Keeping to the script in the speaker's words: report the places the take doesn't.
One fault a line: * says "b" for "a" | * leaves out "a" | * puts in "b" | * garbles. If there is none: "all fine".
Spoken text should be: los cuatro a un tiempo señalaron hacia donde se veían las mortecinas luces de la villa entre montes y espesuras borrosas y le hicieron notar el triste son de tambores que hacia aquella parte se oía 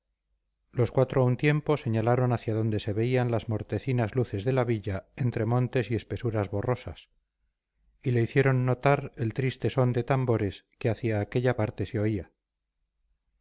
all fine